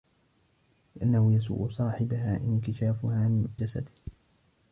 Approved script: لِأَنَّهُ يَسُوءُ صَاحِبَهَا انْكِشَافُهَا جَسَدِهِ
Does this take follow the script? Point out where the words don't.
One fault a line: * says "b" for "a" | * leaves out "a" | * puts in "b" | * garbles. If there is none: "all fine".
all fine